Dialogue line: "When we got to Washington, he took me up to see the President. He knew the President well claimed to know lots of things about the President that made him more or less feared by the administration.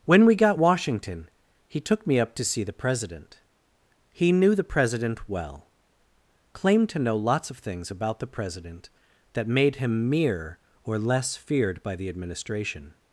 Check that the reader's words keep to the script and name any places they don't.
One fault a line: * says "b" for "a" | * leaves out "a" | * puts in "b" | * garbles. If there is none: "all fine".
* leaves out "to"
* says "mere" for "more"